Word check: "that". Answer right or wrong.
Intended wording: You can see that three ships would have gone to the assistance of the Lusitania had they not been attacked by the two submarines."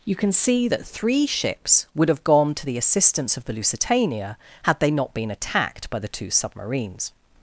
right